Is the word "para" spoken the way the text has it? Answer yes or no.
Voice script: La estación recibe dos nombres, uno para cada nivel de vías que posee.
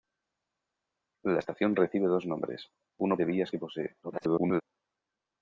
no